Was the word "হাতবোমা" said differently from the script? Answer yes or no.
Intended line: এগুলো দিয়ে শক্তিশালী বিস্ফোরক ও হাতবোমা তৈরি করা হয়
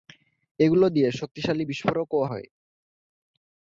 yes